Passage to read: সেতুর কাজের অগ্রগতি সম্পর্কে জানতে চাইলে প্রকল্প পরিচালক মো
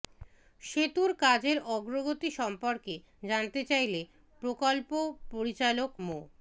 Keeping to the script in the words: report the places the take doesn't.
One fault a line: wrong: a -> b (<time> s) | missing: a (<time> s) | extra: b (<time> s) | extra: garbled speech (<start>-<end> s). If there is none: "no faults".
no faults